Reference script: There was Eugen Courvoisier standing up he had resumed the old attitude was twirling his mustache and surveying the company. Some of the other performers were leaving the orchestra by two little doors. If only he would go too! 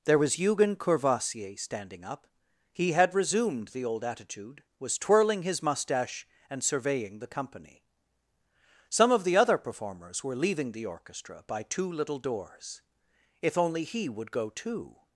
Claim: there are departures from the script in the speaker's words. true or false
false